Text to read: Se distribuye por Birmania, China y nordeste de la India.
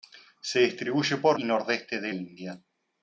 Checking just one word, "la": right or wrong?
wrong